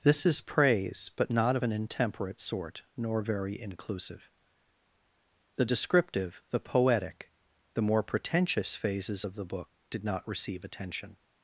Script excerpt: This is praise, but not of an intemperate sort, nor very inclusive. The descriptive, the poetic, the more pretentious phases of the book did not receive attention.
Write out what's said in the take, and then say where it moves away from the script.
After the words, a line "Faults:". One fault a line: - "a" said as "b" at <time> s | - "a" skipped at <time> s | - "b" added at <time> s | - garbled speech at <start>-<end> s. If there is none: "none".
This is praise, but not of an intemperate sort, nor very inclusive. The descriptive, the poetic, the more pretentious phases of the book did not receive attention.
Faults:
none